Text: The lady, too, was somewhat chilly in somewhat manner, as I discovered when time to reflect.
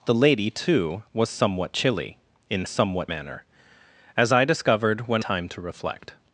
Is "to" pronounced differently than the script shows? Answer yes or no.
no